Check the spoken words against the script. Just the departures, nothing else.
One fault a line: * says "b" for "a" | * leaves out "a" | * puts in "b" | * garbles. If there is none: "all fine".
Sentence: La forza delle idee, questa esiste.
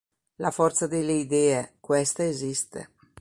all fine